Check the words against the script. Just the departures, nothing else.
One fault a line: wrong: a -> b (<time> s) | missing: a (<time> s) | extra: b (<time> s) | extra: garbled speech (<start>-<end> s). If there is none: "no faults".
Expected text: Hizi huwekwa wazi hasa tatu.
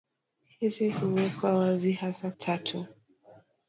no faults